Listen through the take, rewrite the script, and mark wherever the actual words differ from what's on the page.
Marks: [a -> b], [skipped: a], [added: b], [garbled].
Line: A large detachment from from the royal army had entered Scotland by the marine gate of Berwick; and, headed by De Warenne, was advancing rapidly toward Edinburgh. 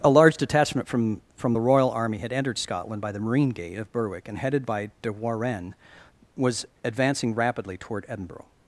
A large detachment from from the royal army had entered Scotland by the marine gate of Berwick; and, headed by De Warenne, was advancing rapidly toward Edinburgh.